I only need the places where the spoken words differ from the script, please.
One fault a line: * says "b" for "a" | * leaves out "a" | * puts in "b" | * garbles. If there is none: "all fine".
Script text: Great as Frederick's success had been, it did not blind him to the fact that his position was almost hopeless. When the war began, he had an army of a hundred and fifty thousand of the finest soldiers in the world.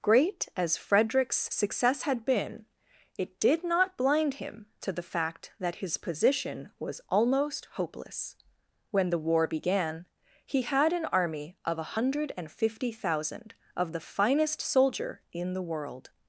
* says "soldier" for "soldiers"